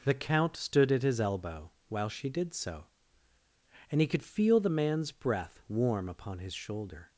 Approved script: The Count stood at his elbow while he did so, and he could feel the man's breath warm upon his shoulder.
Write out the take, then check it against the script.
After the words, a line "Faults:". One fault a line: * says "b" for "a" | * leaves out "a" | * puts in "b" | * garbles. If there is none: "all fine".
The Count stood at his elbow while she did so, and he could feel the man's breath warm upon his shoulder.
Faults:
* says "she" for "he"